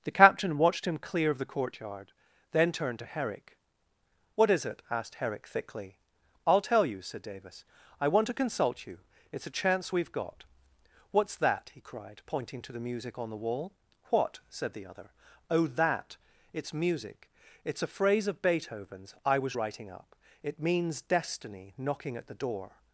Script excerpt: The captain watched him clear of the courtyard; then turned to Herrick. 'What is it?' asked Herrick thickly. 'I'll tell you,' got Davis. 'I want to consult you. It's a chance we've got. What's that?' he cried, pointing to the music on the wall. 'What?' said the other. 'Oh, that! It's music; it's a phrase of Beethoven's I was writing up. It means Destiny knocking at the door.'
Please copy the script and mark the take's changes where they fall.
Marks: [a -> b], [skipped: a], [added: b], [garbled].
The captain watched him clear of the courtyard; then turned to Herrick. 'What is it?' asked Herrick thickly. 'I'll tell you,' [got -> said] Davis. 'I want to consult you. It's a chance we've got. What's that?' he cried, pointing to the music on the wall. 'What?' said the other. 'Oh, that! It's music; it's a phrase of Beethoven's I was writing up. It means Destiny knocking at the door.'